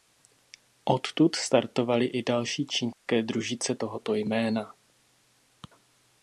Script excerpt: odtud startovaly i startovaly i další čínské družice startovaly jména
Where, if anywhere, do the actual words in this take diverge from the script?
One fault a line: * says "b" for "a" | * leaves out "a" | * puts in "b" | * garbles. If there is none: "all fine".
* leaves out "startovaly i"
* says "tohoto" for "startovaly"